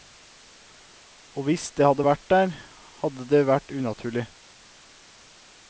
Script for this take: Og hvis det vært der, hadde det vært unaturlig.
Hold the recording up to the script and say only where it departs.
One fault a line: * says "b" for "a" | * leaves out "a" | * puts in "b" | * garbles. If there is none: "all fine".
* puts in "hadde"